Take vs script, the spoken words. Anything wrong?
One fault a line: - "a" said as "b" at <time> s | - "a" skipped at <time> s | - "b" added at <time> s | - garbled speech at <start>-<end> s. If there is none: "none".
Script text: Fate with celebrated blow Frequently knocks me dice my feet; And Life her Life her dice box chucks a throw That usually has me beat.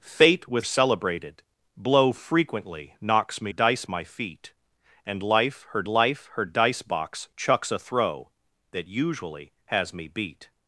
none